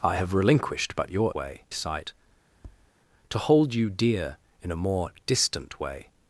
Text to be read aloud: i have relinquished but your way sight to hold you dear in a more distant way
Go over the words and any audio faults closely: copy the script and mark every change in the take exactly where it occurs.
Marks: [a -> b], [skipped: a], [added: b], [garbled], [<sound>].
i have relinquished but your way sight [tap] to hold you dear in a more distant way